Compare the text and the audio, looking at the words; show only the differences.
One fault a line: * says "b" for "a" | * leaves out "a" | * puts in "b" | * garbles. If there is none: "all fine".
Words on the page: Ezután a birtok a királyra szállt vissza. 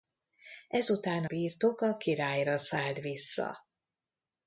* leaves out "a"